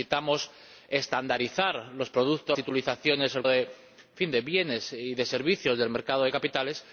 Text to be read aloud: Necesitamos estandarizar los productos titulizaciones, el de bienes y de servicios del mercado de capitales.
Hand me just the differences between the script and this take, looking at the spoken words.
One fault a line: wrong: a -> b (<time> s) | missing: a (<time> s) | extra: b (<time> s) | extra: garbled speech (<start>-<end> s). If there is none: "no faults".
no faults